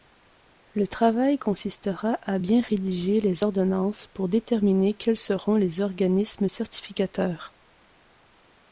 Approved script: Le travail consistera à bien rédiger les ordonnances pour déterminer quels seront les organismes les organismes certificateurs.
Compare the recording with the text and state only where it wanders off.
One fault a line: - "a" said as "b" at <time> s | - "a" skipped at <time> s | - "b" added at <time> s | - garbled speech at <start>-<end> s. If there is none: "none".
- "les organismes" skipped at 6.5 s